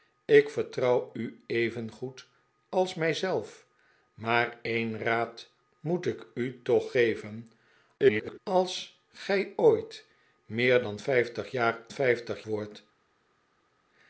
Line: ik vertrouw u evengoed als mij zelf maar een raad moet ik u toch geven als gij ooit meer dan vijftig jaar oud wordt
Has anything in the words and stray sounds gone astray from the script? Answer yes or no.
yes